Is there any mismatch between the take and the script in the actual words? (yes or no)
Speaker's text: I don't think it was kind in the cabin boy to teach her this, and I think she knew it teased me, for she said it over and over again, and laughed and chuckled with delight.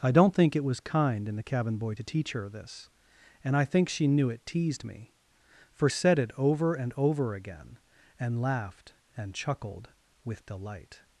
yes